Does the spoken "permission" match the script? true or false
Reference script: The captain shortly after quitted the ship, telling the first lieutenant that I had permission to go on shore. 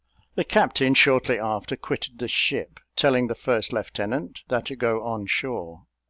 false